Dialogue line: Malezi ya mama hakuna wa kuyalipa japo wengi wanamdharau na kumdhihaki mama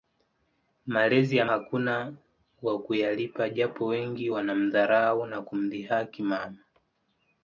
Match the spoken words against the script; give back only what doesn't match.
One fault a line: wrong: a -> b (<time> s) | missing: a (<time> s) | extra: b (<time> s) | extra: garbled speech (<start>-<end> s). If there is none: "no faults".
missing: mama (1.4 s)